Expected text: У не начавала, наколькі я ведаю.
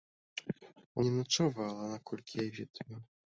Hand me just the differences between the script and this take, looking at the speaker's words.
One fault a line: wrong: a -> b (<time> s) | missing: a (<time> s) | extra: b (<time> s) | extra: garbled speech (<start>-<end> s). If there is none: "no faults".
no faults